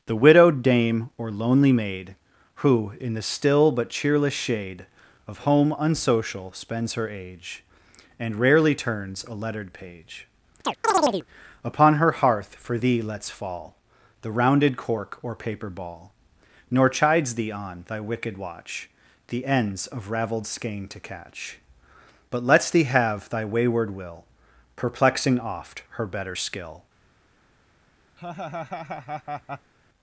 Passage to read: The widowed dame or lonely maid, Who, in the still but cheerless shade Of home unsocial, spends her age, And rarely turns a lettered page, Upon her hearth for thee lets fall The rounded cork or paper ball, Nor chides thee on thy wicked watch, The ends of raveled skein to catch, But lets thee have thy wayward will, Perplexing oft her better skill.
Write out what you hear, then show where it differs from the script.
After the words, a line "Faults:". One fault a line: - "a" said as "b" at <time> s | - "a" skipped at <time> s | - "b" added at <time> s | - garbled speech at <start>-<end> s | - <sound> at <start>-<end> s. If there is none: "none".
The widowed dame or lonely maid, Who, in the still but cheerless shade Of home unsocial, spends her age, And rarely turns a lettered page, Upon her hearth for thee lets fall The rounded cork or paper ball, Nor chides thee on thy wicked watch, The ends of raveled skein to catch, But lets thee have thy wayward will, Perplexing oft her better skill.
Faults:
- chirp at 10.6-11.3 s
- laugh at 28.2-29.7 s